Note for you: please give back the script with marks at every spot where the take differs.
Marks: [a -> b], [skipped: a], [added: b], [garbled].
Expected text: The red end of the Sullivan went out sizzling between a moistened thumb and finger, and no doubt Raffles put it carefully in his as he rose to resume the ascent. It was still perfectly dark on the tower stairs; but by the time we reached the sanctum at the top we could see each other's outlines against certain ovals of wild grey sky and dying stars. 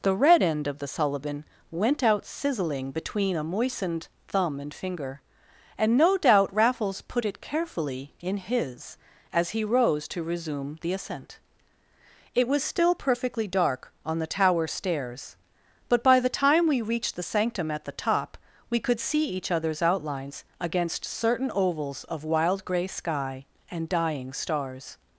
The red end of the Sullivan went out sizzling between a moistened thumb and finger, and no doubt Raffles put it carefully in his as he rose to resume the ascent. It was still perfectly dark on the tower stairs; but by the time we reached the sanctum at the top we could see each other's outlines against certain ovals of wild grey sky and dying stars.